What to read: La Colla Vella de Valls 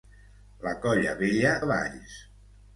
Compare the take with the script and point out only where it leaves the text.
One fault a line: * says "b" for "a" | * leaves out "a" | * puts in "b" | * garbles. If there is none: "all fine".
all fine